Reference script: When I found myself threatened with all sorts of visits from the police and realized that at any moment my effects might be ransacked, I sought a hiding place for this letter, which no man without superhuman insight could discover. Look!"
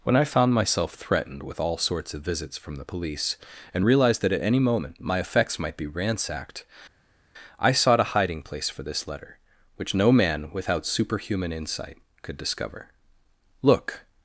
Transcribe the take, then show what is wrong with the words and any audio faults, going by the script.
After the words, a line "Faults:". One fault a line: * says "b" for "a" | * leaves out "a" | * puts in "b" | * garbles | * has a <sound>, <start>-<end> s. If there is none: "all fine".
When I found myself threatened with all sorts of visits from the police and realized that at any moment my effects might be ransacked, I sought a hiding place for this letter, which no man without superhuman insight could discover. Look!"
Faults:
all fine